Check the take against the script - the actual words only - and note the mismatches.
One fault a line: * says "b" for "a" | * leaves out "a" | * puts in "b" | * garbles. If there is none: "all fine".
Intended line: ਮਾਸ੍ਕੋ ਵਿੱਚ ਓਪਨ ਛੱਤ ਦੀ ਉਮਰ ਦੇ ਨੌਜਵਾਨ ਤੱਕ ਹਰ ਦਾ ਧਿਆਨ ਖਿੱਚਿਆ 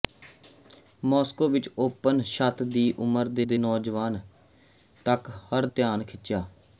* puts in "ਦੇ"
* leaves out "ਦਾ"